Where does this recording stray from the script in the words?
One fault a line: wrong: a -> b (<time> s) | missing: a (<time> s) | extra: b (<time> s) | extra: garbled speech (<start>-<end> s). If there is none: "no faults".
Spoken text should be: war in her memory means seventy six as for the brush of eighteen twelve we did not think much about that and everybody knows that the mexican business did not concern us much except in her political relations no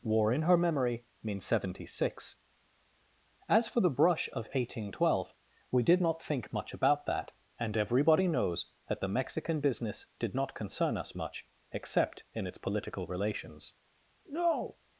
wrong: her -> its (12.5 s)